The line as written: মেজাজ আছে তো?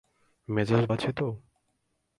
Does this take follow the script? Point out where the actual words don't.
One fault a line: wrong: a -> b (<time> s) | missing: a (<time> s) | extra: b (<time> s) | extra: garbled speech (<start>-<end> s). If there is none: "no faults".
no faults